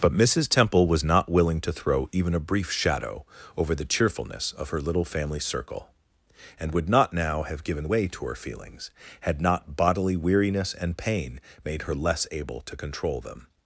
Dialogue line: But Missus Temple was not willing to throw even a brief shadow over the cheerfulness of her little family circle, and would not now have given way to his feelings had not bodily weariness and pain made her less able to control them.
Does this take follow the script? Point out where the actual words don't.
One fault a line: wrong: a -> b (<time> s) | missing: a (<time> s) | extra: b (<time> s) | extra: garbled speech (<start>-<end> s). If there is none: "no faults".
wrong: his -> her (8.3 s)